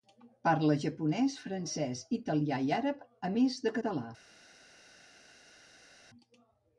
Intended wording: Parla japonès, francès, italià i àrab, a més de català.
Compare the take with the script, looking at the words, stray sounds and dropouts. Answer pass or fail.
pass